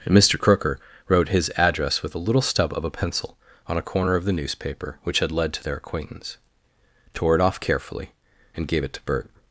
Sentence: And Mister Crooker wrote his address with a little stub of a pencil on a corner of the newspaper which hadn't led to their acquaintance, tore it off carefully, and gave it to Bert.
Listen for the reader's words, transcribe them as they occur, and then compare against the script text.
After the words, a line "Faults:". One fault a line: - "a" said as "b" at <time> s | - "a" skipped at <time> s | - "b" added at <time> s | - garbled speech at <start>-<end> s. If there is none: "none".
And Mister Crooker wrote his address with a little stub of a pencil on a corner of the newspaper which had led to their acquaintance, tore it off carefully, and gave it to Bert.
Faults:
- "hadn't" said as "had" at 5.2 s